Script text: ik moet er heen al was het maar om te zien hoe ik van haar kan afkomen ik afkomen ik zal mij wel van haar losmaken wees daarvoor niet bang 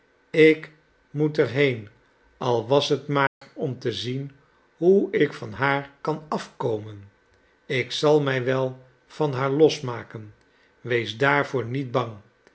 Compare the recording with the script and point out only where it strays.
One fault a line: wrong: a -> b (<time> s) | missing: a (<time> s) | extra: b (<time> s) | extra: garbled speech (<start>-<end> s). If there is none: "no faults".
missing: afkomen ik (7.9 s)